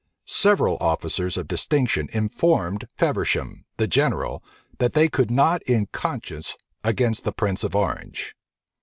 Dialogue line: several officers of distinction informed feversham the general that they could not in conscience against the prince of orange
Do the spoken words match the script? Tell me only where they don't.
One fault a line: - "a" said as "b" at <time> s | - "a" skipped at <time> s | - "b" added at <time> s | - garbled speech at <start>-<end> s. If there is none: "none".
none